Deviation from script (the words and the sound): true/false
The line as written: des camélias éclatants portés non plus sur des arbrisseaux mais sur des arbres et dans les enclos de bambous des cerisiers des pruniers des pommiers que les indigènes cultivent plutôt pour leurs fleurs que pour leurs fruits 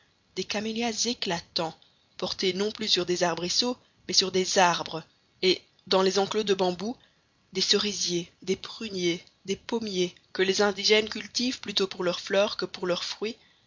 false